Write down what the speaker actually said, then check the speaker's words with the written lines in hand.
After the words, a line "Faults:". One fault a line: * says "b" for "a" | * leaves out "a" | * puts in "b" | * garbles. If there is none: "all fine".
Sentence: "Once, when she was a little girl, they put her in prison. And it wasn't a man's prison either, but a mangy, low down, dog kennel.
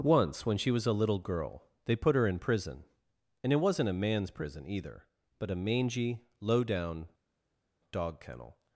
"Once, when she was a little girl, they put her in prison. And it wasn't a man's prison either, but a mangy, low down, dog kennel.
Faults:
all fine